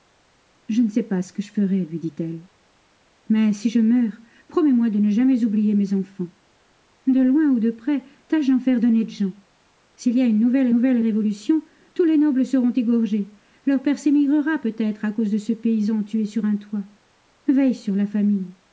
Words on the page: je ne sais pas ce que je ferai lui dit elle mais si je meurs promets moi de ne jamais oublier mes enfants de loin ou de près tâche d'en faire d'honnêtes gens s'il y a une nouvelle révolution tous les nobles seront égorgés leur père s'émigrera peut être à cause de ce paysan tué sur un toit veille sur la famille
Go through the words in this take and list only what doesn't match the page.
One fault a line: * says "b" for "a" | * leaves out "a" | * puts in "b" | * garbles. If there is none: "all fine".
* puts in "nouvelle"